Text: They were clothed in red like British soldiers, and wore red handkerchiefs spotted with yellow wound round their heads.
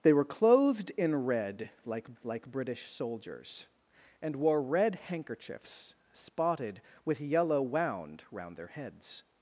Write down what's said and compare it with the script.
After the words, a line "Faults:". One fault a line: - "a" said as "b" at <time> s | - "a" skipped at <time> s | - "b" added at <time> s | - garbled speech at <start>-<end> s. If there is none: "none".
They were clothed in red like like British soldiers, and wore red handkerchiefs spotted with yellow wound round their heads.
Faults:
- "like" added at 2.2 s